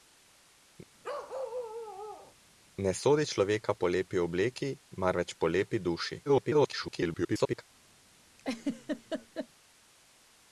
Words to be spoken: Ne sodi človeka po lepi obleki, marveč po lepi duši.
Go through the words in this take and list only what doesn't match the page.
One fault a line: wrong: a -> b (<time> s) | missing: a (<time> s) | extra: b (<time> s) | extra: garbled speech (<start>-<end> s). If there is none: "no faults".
extra: garbled speech (6.3-7.6 s)